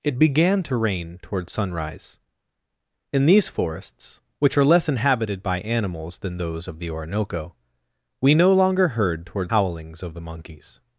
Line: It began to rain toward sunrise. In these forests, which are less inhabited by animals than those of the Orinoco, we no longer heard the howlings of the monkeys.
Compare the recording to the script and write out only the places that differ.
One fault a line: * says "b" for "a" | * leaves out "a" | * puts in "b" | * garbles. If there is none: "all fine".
* says "toward" for "the"